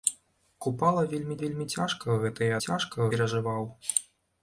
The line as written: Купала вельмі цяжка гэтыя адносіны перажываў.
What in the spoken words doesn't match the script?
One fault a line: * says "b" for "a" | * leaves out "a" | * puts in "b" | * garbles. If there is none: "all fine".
* puts in "вельмі"
* says "цяжка" for "адносіны"